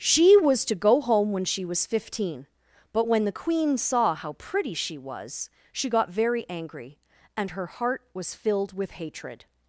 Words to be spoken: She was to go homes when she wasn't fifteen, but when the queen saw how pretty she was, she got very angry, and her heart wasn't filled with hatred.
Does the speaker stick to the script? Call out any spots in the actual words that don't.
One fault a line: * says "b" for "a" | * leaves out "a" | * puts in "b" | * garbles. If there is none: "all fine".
* says "home" for "homes"
* says "was" for "wasn't"
* says "was" for "wasn't"